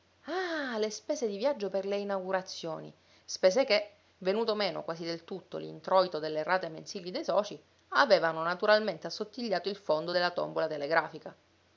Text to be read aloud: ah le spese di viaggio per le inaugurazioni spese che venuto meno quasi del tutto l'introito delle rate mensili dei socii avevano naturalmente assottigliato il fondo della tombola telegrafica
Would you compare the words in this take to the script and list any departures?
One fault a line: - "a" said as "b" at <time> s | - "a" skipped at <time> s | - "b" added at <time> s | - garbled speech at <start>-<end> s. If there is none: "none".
none